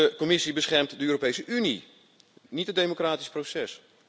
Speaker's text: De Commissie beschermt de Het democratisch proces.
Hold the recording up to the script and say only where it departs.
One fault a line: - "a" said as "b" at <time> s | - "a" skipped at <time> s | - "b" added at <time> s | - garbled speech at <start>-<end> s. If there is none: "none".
- "Europese Unie niet" added at 1.1 s